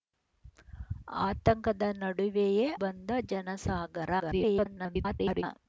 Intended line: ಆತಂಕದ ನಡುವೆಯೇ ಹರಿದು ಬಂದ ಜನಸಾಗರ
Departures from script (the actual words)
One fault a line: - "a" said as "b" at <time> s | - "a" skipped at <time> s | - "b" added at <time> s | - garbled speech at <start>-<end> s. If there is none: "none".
- "ಹರಿದು" skipped at 2.6 s
- garbled speech at 4.2-5.4 s